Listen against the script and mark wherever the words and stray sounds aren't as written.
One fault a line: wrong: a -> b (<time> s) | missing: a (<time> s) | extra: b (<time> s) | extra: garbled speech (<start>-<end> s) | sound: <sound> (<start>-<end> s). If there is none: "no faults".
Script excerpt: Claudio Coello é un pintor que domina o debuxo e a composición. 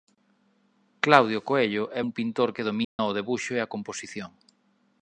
sound: dropout (2.8-3.0 s)